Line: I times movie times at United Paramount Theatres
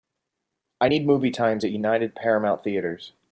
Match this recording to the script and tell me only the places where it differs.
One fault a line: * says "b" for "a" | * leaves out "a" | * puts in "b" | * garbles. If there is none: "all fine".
* says "need" for "times"